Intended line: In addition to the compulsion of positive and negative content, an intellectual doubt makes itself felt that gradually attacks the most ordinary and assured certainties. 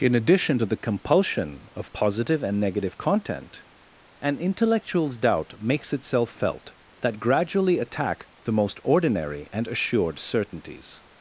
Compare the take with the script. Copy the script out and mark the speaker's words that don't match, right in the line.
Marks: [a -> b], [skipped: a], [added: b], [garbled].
In addition to the compulsion of positive and negative content, an [intellectual -> intellectuals] doubt makes itself felt that gradually [attacks -> attack] the most ordinary and assured certainties.